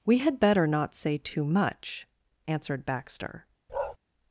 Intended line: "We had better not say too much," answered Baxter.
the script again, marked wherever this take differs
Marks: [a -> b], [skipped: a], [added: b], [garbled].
"We had better not say too much," answered Baxter.